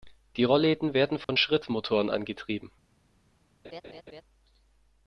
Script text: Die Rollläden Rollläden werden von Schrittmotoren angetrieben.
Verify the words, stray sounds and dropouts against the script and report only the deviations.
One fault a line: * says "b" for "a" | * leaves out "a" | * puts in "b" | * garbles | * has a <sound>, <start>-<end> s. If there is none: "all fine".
* leaves out "Rollläden"
* has a dropout, 1.2-1.3 s
* has a laugh, 3.6-4.2 s